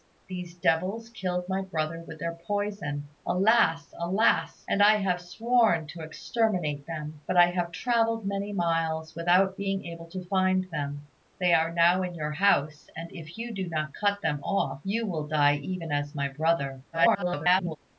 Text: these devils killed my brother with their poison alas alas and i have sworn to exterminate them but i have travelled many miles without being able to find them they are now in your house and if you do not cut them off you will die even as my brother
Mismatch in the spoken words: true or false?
true